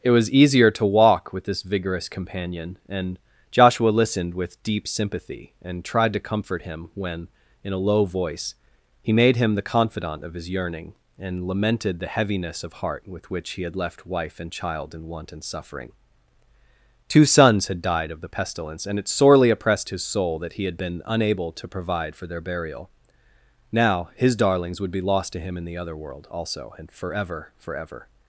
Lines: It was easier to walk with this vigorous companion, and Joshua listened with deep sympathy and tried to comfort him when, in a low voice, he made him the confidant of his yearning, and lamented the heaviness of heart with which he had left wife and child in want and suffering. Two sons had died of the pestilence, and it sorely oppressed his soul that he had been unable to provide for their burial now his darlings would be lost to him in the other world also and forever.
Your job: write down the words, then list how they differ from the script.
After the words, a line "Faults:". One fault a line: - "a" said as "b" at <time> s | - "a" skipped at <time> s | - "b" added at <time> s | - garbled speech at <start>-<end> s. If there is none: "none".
It was easier to walk with this vigorous companion, and Joshua listened with deep sympathy and tried to comfort him when, in a low voice, he made him the confidant of his yearning, and lamented the heaviness of heart with which he had left wife and child in want and suffering. Two sons had died of the pestilence, and it sorely oppressed his soul that he had been unable to provide for their burial now his darlings would be lost to him in the other world also and forever forever.
Faults:
- "forever" added at 27.6 s